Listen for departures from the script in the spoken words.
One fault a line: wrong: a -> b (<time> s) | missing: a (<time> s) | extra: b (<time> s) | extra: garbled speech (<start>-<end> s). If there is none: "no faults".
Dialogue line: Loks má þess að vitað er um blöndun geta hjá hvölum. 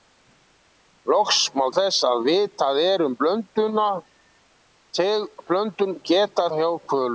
no faults